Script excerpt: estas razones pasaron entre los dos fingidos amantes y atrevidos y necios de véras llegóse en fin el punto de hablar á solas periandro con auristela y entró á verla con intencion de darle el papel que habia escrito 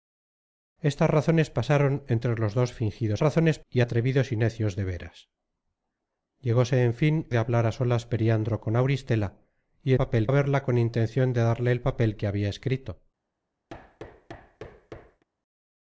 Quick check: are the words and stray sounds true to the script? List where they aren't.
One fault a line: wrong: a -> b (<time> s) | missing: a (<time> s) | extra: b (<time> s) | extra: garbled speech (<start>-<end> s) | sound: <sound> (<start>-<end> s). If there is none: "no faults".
wrong: amantes -> razones (3.2 s)
missing: el punto (7.3 s)
wrong: entró -> papel (9.9 s)
sound: thud (13.7-15.2 s)